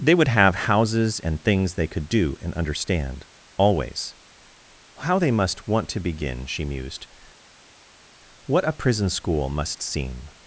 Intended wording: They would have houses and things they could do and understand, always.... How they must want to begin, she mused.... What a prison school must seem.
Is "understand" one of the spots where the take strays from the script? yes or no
no